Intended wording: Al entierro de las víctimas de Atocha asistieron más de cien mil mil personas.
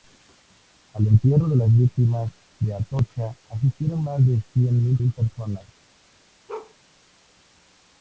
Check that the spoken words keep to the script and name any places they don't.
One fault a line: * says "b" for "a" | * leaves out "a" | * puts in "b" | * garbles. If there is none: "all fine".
all fine